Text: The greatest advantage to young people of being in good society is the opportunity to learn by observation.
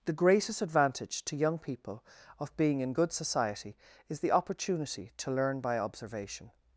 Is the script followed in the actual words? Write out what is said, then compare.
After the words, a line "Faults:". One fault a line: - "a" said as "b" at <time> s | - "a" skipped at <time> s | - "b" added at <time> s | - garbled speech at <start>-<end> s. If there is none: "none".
The greatest advantage to young people of being in good society is the opportunity to learn by observation.
Faults:
none